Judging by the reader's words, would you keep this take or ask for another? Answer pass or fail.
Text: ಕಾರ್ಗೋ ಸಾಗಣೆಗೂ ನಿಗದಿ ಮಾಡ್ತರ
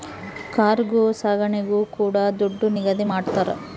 fail